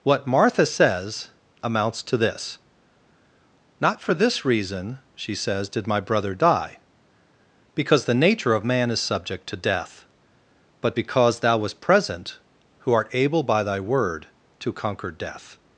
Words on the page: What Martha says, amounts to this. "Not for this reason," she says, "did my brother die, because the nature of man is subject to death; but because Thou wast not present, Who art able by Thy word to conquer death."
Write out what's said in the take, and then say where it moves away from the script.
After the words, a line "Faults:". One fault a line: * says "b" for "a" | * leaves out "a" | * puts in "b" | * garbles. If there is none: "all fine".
What Martha says, amounts to this. "Not for this reason," she says, "did my brother die, because the nature of man is subject to death; but because Thou wast present, Who art able by Thy word to conquer death."
Faults:
* leaves out "not"